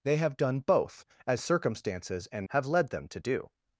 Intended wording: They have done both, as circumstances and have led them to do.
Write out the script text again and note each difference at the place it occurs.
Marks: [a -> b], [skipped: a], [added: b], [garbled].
They have done both, as circumstances and have led them to do.